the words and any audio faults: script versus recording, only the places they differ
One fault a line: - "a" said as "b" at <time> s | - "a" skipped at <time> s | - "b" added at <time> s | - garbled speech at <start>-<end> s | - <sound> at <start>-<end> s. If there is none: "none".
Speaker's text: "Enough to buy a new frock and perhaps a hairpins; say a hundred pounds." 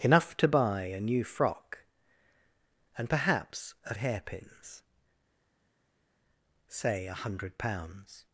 none